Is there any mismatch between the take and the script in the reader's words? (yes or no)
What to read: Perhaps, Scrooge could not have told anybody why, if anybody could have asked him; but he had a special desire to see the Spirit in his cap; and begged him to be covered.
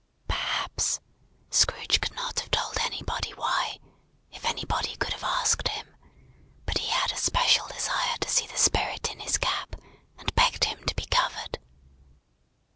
no